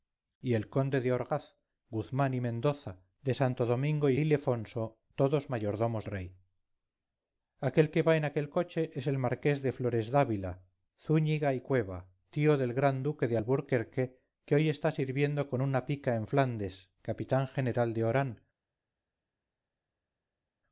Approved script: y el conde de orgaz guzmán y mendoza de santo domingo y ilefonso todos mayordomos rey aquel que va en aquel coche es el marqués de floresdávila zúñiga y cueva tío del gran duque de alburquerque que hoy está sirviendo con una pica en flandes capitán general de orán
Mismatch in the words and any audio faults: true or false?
false